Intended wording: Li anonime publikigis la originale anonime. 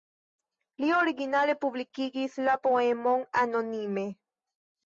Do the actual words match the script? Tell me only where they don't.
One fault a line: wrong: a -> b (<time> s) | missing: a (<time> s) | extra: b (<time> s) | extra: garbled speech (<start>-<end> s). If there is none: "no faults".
wrong: anonime -> originale (1.0 s)
wrong: originale -> poemon (2.6 s)